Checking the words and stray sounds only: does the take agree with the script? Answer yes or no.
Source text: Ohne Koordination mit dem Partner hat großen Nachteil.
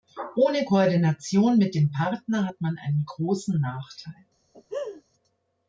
no